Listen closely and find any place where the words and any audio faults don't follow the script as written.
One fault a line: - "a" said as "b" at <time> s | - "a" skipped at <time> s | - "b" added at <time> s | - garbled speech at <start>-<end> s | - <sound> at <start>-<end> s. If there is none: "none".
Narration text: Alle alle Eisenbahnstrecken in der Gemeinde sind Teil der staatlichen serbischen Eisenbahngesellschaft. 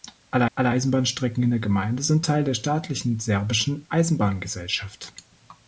none